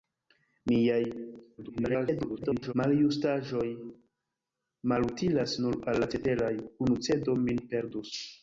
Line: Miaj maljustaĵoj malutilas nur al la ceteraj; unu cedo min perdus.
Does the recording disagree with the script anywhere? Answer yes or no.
yes